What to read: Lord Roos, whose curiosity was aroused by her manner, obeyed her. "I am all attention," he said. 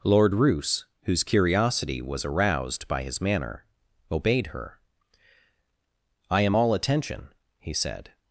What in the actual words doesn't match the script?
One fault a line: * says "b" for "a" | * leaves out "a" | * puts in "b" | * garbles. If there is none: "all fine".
* says "his" for "her"